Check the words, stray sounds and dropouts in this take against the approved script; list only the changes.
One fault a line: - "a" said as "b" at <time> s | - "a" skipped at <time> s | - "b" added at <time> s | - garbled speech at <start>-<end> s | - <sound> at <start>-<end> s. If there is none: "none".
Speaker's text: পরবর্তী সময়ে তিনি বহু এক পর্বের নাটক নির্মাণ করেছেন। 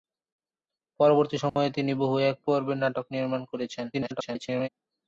- dropout at 1.5-1.6 s
- garbled speech at 3.9-4.7 s